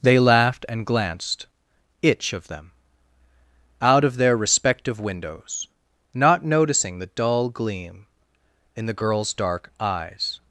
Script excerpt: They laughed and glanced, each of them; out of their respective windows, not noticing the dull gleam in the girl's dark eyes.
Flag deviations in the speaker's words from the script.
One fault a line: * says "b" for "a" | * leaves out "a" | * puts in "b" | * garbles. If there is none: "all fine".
* says "itch" for "each"